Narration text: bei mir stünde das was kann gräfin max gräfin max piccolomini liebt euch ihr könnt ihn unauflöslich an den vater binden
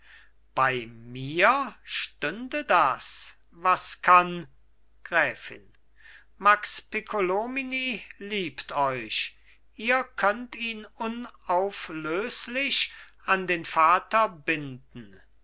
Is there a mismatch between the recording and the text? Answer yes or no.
yes